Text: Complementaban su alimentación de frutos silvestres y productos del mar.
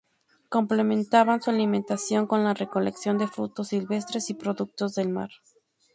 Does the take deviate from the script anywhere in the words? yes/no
yes